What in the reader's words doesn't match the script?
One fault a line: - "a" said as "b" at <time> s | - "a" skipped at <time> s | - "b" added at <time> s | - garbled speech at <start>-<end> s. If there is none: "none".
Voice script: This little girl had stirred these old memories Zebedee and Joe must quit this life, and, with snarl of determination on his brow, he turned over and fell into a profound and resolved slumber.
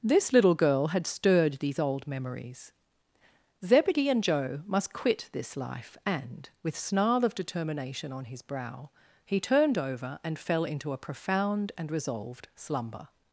none